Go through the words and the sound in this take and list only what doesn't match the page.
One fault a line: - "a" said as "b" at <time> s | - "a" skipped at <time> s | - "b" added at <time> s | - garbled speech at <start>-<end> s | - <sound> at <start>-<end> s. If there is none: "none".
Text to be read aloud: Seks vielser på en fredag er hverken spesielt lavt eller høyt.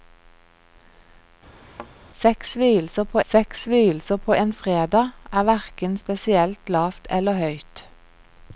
- thud at 1.6-1.9 s
- "seks vielser på" added at 3.3 s